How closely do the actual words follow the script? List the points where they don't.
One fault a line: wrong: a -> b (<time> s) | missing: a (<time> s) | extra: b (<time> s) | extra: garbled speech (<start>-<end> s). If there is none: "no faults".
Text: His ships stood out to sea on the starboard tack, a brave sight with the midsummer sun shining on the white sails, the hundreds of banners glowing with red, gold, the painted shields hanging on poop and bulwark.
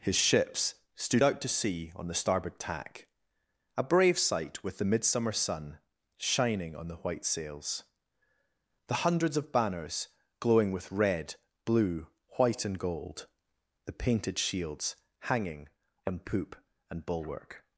extra: blue white and (11.6 s)